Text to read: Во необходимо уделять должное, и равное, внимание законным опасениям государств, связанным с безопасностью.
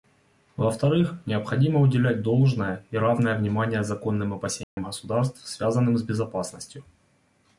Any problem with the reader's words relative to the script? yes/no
yes